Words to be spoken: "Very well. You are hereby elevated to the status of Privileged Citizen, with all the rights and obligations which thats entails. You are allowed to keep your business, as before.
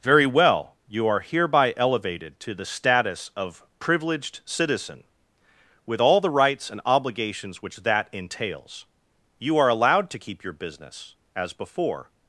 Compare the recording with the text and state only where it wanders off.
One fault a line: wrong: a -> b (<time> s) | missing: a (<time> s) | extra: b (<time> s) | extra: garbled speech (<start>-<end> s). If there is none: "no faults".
wrong: thats -> that (7.8 s)